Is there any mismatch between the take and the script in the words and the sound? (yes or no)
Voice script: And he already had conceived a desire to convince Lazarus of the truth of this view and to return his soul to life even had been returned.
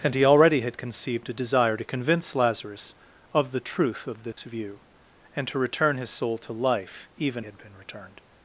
yes